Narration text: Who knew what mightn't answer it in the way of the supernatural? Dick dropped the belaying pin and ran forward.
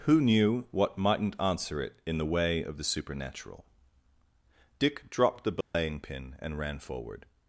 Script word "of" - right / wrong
right